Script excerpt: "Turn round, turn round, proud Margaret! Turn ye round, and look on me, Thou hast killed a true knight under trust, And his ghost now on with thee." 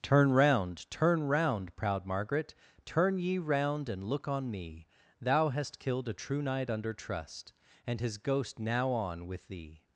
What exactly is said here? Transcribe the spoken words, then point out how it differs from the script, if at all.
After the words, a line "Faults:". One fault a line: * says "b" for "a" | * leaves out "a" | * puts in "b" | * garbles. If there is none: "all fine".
"Turn round, turn round, proud Margaret! Turn ye round, and look on me, Thou hast killed a true knight under trust, And his ghost now on with thee."
Faults:
all fine